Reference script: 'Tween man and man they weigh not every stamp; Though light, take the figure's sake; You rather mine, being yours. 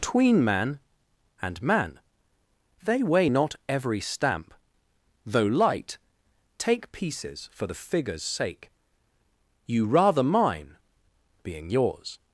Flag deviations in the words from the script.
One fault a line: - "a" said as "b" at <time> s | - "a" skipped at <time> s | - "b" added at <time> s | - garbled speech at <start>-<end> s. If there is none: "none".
- "pieces for" added at 6.9 s